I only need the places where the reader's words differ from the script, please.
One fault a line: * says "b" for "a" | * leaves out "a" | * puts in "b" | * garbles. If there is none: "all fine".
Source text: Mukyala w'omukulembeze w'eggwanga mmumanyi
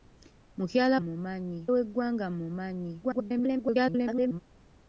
* says "mmumanyi" for "w'omukulembeze"
* garbles